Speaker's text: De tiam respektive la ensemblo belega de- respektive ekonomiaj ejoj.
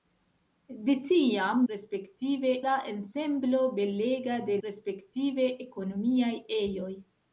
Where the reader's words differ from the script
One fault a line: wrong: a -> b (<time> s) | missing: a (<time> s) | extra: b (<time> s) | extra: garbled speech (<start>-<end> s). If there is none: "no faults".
no faults